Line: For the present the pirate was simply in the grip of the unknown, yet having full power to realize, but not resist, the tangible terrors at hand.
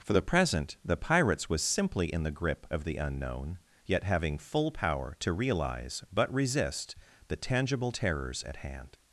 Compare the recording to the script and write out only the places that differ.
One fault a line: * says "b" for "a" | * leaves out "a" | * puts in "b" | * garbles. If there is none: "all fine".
* says "pirates" for "pirate"
* leaves out "not"